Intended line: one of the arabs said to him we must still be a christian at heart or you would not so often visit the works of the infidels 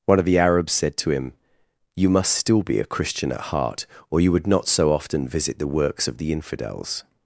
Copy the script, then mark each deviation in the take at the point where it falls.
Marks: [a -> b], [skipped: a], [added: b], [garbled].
one of the arabs said to him [we -> you] must still be a christian at heart or you would not so often visit the works of the infidels